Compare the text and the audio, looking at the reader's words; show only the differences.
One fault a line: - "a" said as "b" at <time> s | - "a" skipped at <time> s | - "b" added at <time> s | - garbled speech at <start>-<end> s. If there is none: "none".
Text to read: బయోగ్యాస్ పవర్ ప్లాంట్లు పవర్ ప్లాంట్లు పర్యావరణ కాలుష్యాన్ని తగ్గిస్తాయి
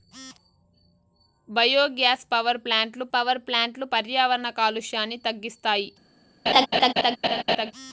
none